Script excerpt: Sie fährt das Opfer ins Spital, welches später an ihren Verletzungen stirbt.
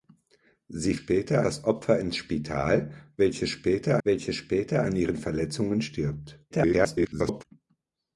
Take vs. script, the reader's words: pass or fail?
fail